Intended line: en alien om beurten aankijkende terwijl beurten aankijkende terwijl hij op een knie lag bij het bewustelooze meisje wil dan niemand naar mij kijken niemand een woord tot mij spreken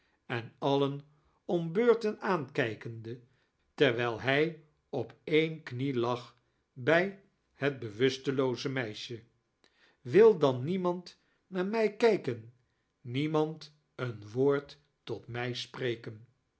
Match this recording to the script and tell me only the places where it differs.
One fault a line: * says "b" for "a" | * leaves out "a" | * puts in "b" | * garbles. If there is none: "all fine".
* leaves out "beurten aankijkende terwijl"